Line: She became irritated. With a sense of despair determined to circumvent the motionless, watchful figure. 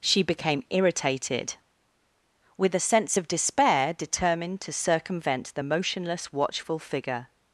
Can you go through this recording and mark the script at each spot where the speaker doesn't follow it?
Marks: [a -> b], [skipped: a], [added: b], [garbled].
She became irritated. With a sense of despair determined to circumvent the motionless, watchful figure.